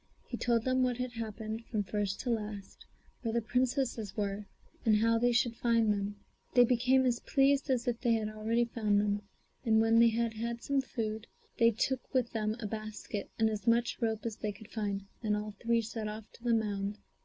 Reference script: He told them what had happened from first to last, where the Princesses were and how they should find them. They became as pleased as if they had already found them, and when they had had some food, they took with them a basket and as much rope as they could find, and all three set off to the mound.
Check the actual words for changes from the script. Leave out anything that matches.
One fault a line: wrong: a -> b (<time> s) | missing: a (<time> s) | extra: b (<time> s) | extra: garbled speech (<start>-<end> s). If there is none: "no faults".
no faults